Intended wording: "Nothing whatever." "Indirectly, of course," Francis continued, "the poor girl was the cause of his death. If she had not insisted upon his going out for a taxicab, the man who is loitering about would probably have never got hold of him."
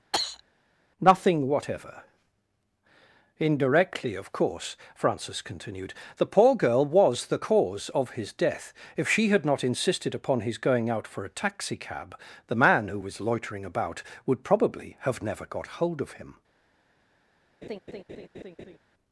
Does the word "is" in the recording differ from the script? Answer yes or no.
yes